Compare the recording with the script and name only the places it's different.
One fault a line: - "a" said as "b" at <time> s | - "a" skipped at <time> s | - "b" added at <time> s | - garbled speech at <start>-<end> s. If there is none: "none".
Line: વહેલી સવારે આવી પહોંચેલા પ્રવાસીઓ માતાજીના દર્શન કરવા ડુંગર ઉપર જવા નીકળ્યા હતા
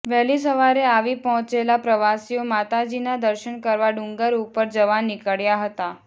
none